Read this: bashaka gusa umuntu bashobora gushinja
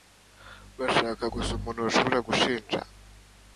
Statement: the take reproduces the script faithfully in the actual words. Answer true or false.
true